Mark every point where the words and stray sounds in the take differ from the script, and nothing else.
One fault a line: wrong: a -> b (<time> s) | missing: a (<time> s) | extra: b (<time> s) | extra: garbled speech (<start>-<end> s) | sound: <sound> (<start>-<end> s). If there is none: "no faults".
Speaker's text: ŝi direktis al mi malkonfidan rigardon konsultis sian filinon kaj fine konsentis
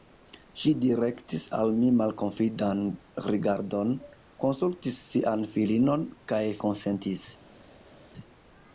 missing: fine (6.4 s)